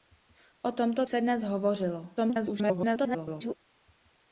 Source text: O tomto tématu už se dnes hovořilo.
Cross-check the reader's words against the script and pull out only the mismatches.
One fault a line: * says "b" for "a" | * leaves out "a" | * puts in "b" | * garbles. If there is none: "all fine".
* leaves out "tématu už"
* garbles